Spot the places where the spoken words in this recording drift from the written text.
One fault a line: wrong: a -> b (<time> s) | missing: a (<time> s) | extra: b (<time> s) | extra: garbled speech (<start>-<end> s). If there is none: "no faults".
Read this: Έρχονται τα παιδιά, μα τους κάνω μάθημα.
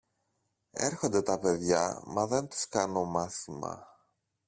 extra: δεν (2.3 s)